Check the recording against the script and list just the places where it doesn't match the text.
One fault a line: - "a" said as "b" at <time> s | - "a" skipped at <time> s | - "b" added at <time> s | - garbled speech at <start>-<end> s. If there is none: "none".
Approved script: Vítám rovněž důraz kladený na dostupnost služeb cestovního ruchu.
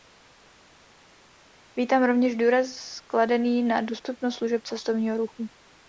none